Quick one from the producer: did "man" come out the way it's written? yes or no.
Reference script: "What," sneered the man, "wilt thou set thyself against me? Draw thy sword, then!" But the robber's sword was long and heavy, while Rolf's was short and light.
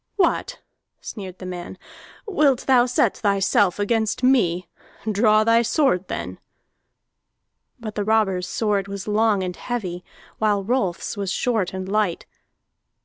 yes